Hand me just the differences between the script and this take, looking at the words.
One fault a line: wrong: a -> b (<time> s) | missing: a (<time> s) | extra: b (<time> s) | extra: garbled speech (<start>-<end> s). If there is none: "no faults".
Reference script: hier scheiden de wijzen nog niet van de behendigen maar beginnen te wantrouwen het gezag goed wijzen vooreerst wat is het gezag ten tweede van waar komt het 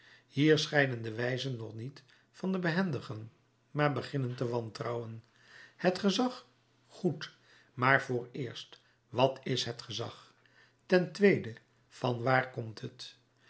wrong: wijzen -> maar (7.7 s)